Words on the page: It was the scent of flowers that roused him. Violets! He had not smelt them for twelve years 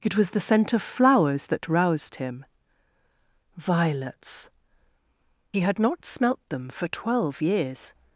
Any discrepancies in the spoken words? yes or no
no